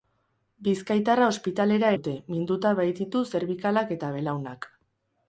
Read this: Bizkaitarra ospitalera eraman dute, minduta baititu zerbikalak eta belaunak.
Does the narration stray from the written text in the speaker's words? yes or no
yes